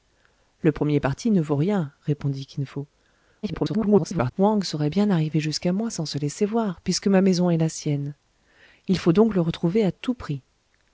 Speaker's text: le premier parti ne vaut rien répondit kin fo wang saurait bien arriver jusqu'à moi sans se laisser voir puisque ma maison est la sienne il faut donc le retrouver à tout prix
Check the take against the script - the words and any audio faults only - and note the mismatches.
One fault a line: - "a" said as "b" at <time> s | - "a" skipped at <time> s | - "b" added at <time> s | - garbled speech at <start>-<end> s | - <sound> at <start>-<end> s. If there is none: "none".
- garbled speech at 3.4-4.3 s